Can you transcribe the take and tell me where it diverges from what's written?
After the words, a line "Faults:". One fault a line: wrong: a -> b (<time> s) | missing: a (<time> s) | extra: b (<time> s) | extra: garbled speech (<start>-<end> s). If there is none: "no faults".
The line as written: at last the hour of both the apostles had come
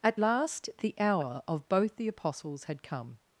at last the hour of both the apostles had come
Faults:
no faults